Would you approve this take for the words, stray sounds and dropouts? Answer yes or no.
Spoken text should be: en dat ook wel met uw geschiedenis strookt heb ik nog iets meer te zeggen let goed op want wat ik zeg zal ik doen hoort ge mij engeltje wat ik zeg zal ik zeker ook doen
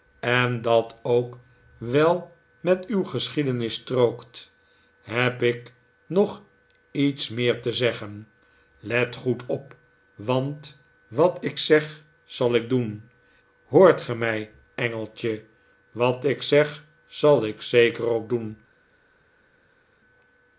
yes